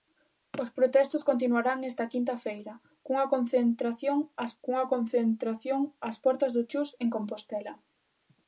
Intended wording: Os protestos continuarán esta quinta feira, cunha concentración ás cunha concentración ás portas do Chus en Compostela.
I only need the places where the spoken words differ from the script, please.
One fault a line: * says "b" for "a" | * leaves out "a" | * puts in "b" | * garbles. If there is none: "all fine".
all fine